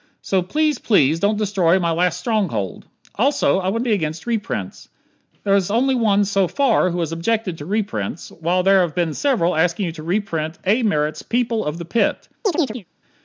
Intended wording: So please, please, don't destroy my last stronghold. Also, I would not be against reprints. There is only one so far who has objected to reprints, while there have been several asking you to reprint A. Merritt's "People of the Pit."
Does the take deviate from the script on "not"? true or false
true